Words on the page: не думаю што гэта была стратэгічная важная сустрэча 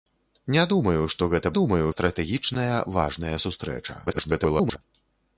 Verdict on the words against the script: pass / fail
fail